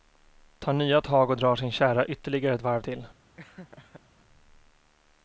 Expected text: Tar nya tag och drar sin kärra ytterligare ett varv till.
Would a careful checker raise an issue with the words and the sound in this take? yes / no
yes